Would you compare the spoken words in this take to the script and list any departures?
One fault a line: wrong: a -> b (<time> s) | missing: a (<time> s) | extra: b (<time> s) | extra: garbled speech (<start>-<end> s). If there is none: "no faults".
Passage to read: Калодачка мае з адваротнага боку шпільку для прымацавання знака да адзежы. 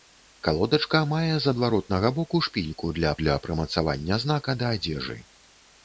extra: для (3.2 s)